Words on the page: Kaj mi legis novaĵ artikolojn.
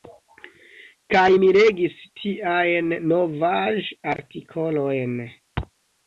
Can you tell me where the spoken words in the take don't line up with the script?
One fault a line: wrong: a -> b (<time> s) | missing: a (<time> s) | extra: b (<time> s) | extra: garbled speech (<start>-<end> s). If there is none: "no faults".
extra: tiajn (2.2 s)